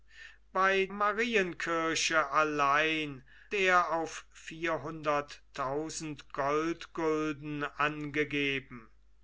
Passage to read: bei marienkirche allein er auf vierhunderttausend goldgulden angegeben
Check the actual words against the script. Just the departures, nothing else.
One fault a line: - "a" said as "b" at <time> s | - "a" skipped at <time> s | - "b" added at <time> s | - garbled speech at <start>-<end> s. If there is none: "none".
none